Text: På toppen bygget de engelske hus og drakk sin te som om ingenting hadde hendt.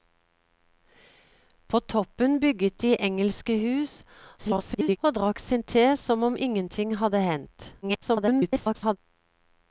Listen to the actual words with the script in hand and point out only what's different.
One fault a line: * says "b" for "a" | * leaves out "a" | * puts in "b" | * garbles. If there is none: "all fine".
* garbles
* garbles